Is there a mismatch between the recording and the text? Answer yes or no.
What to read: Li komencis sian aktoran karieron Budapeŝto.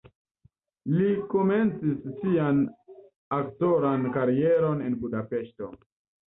yes